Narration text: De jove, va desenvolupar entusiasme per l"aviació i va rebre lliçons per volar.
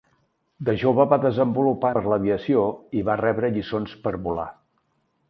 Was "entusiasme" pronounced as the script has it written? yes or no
no